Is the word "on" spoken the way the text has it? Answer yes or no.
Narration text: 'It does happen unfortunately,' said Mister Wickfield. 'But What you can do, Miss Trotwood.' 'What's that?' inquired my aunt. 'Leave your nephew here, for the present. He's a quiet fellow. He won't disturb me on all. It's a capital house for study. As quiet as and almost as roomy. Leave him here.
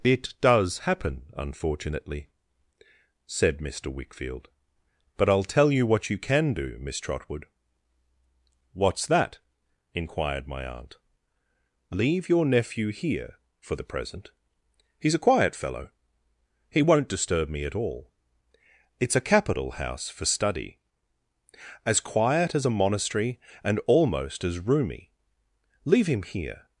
no